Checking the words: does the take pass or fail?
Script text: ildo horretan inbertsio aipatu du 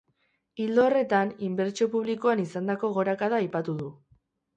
fail